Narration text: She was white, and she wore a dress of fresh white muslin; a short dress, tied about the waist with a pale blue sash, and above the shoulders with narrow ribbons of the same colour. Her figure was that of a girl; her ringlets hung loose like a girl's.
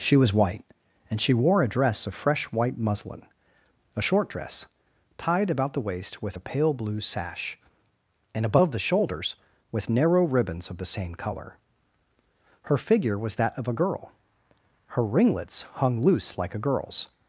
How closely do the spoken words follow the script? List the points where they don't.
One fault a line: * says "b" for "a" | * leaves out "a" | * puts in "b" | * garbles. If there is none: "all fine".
all fine